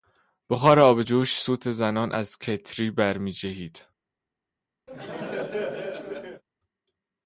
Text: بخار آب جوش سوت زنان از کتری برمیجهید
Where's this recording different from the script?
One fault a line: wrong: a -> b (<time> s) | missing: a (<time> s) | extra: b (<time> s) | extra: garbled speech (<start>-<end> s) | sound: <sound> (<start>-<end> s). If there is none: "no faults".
sound: laugh (4.9-6.4 s)